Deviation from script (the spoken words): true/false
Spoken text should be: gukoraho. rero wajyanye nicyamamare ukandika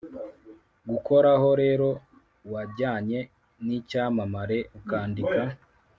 false